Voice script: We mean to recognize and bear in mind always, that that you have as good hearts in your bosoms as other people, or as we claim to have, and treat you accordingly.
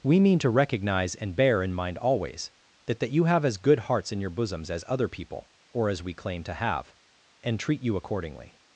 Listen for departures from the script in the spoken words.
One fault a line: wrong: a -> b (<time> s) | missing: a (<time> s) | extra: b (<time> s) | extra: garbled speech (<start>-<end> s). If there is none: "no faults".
no faults